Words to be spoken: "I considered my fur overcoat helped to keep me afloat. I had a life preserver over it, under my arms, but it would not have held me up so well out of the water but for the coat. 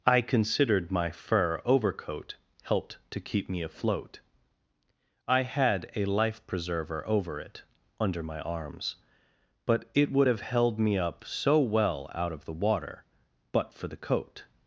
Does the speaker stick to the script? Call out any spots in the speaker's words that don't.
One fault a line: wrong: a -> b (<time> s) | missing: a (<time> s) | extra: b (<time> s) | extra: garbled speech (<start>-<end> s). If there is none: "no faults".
missing: not (10.3 s)